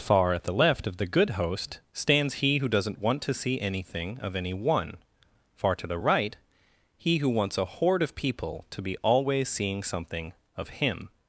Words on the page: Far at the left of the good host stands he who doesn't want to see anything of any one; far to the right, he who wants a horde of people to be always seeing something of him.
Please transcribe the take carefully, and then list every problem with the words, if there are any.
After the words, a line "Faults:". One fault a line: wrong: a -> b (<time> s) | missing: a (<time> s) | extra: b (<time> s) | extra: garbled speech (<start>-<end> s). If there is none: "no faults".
Far at the left of the good host stands he who doesn't want to see anything of any one; far to the right, he who wants a horde of people to be always seeing something of him.
Faults:
no faults